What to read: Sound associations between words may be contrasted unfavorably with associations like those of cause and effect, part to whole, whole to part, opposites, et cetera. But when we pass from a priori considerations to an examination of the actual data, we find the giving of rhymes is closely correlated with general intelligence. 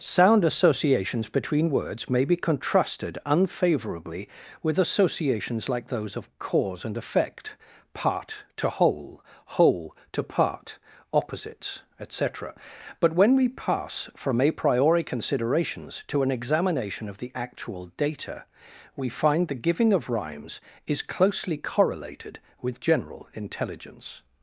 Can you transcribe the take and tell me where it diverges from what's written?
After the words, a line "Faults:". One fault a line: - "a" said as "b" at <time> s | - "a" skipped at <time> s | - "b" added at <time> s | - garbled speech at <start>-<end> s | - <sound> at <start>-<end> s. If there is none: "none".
Sound associations between words may be contrasted unfavorably with associations like those of cause and effect, part to whole, whole to part, opposites, et cetera. But when we pass from a priori considerations to an examination of the actual data, we find the giving of rhymes is closely correlated with general intelligence.
Faults:
none